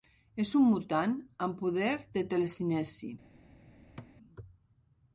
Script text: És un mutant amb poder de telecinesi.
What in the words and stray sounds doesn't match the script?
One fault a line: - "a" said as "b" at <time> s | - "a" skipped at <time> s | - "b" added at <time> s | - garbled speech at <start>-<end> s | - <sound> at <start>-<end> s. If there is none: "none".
- thud at 4.0-4.2 s